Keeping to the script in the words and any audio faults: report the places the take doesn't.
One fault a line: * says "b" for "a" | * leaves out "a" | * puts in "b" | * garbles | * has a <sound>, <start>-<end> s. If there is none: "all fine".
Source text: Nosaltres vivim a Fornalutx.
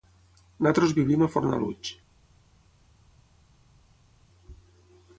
all fine